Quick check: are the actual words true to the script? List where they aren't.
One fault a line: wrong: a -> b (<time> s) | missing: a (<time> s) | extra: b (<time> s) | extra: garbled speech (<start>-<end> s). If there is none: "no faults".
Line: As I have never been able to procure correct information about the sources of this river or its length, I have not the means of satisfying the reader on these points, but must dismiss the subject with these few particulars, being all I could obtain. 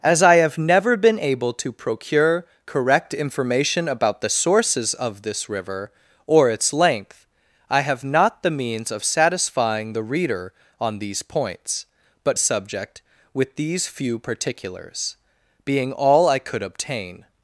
missing: must dismiss the (12.4 s)